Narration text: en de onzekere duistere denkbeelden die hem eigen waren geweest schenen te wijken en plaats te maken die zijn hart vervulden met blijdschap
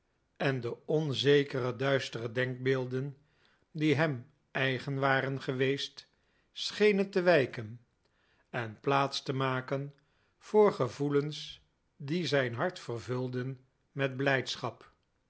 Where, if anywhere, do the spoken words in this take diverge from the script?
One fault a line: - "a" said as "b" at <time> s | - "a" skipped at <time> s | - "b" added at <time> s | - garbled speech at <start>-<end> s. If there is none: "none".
- "voor gevoelens" added at 10.4 s